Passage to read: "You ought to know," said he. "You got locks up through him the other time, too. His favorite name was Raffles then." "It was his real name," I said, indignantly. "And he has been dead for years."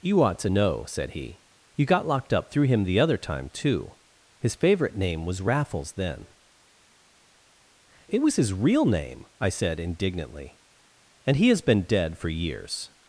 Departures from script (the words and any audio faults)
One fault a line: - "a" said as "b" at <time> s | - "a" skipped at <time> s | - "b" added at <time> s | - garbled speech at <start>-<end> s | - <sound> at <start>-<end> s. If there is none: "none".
- "locks" said as "locked" at 2.1 s